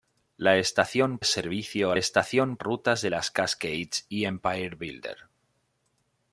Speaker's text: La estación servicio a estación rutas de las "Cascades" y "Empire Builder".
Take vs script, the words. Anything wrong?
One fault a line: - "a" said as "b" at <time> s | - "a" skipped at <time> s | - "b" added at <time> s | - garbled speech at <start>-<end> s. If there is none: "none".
none